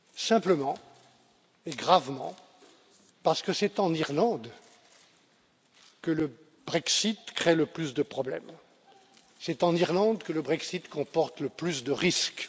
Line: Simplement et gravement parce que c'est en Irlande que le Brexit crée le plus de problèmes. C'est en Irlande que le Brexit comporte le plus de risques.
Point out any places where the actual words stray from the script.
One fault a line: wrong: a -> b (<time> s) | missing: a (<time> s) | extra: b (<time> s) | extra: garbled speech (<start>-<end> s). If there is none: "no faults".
no faults